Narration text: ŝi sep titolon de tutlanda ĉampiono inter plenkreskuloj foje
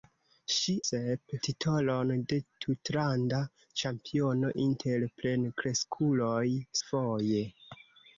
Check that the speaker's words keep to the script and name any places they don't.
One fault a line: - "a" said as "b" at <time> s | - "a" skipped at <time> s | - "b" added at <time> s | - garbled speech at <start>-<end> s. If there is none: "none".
none